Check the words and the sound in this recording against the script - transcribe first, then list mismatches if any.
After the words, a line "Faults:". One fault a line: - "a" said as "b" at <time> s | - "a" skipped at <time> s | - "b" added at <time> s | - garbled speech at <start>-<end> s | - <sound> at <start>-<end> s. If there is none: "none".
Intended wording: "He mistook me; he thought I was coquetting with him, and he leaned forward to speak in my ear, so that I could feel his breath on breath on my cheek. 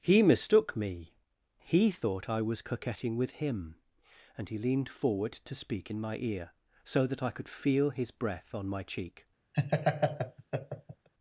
"He mistook me; he thought I was coquetting with him, and he leaned forward to speak in my ear, so that I could feel his breath on my cheek.
Faults:
- "breath on" skipped at 8.7 s
- laugh at 9.5-11.1 s